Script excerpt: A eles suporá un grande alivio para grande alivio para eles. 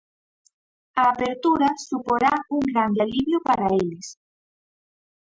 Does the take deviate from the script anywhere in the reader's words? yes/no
yes